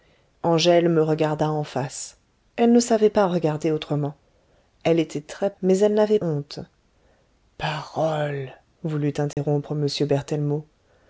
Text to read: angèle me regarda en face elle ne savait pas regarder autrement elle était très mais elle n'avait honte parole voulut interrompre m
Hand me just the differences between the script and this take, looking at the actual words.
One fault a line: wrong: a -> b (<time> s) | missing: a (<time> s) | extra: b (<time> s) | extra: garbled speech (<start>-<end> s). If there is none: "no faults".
no faults